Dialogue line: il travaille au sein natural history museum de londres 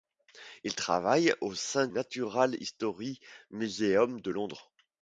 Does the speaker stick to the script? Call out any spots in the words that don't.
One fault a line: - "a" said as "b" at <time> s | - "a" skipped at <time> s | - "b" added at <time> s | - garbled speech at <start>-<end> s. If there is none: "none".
none